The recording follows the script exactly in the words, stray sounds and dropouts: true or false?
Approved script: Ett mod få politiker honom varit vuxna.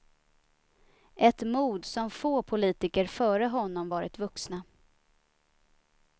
false